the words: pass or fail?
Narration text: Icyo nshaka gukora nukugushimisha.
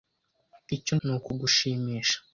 fail